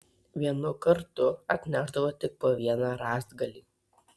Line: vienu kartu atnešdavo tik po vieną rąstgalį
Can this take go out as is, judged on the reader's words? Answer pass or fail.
pass